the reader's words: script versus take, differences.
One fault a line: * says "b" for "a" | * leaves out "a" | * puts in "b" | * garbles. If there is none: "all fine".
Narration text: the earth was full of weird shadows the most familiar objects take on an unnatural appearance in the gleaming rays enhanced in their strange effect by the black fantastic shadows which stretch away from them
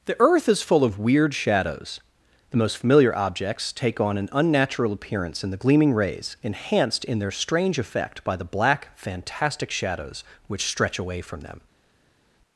* says "is" for "was"